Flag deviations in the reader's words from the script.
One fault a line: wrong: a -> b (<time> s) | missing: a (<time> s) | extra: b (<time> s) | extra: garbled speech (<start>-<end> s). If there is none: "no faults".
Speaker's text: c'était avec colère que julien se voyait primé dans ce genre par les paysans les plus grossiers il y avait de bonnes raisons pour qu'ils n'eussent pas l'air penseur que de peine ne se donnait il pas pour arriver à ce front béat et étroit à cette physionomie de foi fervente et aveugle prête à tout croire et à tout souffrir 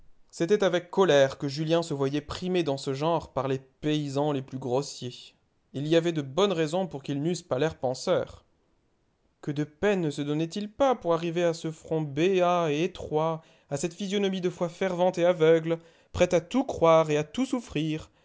no faults